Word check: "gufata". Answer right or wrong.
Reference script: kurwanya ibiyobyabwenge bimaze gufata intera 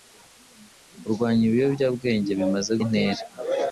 wrong